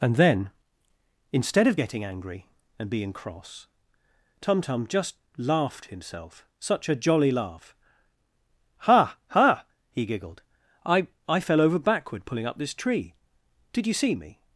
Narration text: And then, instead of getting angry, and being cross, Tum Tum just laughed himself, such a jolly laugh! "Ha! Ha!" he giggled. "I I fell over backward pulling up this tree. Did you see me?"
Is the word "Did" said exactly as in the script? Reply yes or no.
yes